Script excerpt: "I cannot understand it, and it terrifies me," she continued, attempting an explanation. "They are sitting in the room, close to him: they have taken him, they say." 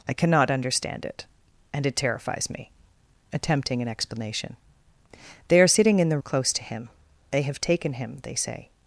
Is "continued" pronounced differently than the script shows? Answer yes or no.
yes